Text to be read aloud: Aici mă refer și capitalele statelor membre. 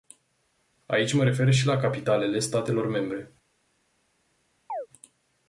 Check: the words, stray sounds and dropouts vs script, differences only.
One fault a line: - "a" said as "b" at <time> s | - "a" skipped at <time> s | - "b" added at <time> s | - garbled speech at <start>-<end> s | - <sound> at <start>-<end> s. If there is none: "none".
- "la" added at 1.7 s
- chirp at 4.7-4.9 s